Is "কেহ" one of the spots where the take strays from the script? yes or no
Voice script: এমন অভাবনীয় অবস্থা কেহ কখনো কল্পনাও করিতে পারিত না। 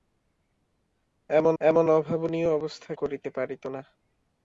yes